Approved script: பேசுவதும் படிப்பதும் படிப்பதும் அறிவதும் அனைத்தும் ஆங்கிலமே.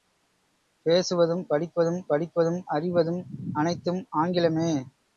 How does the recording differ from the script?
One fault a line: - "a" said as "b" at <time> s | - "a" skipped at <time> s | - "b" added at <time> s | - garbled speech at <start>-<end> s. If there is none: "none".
none